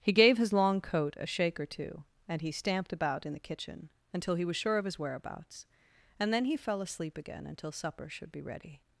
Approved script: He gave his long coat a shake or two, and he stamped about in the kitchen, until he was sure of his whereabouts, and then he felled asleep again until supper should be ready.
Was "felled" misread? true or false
true